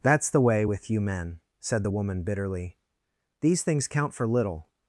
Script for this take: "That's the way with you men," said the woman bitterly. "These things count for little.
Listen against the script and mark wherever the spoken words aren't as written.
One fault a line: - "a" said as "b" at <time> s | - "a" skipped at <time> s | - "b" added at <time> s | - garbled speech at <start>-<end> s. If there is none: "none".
none